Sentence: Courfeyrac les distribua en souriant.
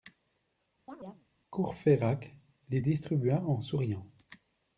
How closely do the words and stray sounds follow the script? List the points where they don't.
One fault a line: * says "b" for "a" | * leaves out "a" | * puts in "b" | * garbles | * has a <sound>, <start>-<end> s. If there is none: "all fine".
* has a chirp, 0.9-1.3 s